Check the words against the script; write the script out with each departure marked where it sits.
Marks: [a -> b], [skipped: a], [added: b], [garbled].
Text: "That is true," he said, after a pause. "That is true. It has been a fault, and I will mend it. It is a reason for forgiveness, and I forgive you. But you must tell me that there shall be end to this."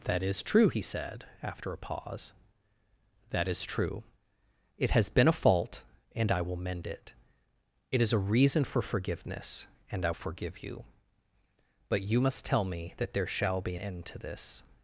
"That is true," he said, after a pause. "That is true. It has been a fault, and I will mend it. It is a reason for forgiveness, and I forgive you. But you must tell me that there shall be end to this."